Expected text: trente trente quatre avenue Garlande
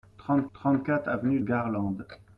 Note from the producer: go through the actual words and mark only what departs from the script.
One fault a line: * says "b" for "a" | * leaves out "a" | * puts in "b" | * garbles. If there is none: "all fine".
all fine